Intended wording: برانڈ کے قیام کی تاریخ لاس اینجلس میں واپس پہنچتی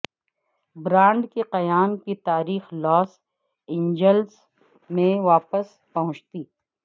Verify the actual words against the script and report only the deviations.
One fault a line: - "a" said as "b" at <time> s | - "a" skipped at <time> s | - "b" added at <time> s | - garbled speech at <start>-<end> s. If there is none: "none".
none